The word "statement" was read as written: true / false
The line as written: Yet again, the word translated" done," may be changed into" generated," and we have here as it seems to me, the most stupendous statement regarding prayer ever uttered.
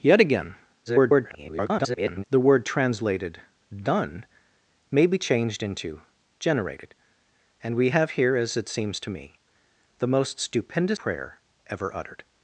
false